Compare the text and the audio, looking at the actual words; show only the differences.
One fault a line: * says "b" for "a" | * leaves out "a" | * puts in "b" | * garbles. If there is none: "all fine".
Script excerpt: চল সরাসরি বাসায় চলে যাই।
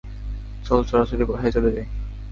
all fine